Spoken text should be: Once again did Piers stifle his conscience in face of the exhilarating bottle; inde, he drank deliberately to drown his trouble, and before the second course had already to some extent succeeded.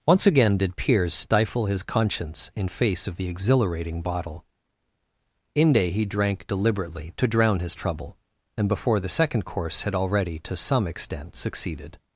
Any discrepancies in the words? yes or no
no